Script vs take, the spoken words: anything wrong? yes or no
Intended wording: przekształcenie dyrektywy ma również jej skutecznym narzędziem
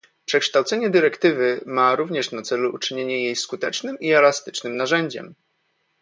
yes